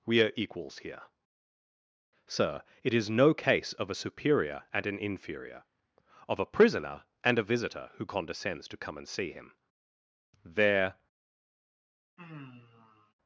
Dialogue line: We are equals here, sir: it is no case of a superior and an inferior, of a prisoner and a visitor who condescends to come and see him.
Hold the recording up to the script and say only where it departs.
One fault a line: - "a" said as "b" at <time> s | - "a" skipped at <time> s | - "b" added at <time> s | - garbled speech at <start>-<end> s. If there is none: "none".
- "There" added at 10.4 s